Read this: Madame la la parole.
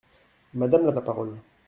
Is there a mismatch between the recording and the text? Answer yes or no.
no